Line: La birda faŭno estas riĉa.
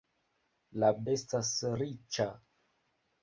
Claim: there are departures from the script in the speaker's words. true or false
true